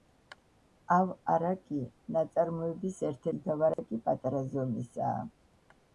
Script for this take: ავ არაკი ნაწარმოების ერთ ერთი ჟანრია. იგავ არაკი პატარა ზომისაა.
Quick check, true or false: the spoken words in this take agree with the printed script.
false